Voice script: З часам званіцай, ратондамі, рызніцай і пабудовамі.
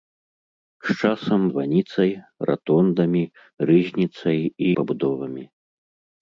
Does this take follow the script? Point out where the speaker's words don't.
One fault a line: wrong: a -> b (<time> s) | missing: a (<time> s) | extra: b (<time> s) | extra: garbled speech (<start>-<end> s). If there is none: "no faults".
no faults